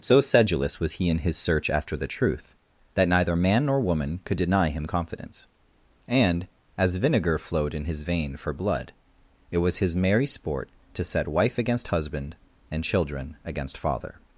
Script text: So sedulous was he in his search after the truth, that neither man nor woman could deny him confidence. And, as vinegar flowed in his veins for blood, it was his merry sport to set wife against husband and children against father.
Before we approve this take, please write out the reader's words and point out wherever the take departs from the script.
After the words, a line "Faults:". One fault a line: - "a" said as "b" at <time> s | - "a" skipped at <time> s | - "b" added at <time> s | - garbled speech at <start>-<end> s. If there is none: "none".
So sedulous was he in his search after the truth, that neither man nor woman could deny him confidence. And, as vinegar flowed in his vein for blood, it was his merry sport to set wife against husband and children against father.
Faults:
- "veins" said as "vein" at 8.0 s